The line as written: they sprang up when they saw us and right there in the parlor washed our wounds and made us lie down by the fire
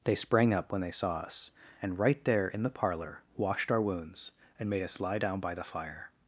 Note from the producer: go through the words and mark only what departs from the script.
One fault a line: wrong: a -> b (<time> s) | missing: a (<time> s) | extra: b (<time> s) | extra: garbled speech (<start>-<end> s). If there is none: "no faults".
no faults